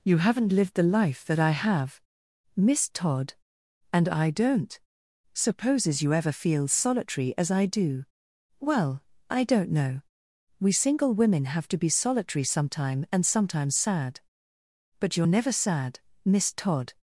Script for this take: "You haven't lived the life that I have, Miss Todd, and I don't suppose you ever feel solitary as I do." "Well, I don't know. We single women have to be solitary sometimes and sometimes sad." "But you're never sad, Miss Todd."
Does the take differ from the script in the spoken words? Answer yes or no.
yes